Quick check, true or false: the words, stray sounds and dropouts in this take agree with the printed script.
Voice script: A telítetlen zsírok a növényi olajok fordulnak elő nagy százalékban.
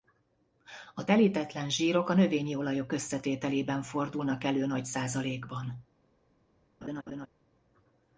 false